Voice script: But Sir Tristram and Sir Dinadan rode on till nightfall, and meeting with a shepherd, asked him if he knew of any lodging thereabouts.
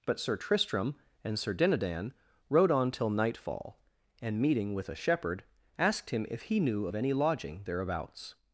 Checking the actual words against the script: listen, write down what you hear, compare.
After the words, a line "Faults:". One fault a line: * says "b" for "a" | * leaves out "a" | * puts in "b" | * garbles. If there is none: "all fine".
But Sir Tristram and Sir Dinadan rode on till nightfall, and meeting with a shepherd, asked him if he knew of any lodging thereabouts.
Faults:
all fine